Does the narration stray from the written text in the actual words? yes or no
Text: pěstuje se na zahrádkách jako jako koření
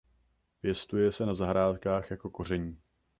yes